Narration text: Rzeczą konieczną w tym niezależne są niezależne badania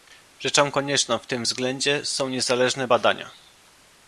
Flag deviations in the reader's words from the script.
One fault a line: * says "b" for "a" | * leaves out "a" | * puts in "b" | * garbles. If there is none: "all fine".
* says "względzie" for "niezależne"